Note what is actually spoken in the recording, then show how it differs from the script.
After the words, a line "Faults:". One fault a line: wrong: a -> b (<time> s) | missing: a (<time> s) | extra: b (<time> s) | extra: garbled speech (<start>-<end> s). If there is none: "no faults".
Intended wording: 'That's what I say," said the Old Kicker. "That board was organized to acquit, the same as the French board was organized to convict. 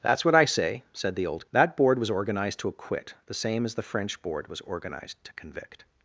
'That's what I say," said the Old. "That board was organized to acquit, the same as the French board was organized to convict.
Faults:
missing: Kicker (1.5 s)